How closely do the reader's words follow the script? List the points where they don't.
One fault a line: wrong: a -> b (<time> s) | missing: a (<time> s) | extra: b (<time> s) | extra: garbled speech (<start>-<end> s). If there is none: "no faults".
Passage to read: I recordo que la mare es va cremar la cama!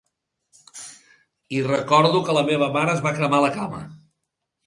extra: meva (2.5 s)